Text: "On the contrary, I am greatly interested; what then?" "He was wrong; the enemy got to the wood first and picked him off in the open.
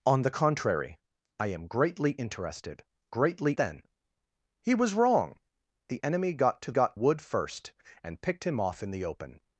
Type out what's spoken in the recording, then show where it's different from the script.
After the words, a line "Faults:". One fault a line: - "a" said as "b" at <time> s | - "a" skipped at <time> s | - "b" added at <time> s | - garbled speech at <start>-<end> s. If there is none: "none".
"On the contrary, I am greatly interested; greatly then?" "He was wrong; the enemy got to got wood first and picked him off in the open.
Faults:
- "what" said as "greatly" at 3.1 s
- "the" said as "got" at 6.7 s